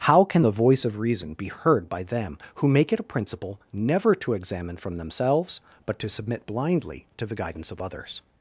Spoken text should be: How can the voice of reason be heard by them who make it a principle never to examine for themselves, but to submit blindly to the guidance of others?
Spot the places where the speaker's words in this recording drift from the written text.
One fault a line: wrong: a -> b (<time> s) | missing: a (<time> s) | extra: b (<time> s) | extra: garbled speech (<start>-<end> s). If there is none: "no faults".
wrong: for -> from (4.8 s)